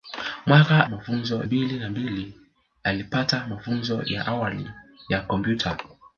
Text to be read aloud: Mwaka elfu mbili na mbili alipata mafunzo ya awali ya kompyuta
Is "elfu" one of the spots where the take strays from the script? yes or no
yes